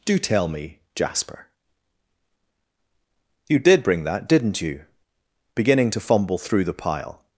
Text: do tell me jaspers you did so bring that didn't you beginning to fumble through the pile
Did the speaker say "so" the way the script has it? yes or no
no